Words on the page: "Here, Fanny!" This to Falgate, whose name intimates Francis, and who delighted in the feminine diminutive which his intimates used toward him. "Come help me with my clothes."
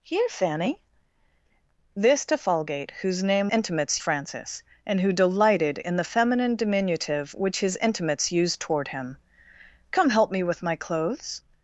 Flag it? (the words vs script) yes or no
no